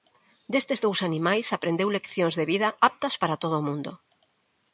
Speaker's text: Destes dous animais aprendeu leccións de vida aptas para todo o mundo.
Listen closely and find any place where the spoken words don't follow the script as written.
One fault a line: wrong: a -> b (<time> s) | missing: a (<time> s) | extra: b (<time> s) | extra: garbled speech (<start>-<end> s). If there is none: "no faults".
no faults